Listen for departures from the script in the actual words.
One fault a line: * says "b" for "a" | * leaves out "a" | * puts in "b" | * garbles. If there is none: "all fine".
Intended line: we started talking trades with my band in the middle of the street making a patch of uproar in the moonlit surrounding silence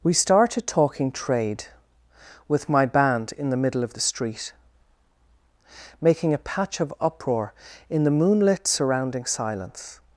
* says "trade" for "trades"